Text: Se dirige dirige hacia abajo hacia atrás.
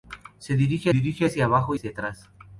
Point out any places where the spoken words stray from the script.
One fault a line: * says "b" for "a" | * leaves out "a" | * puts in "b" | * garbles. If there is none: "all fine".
all fine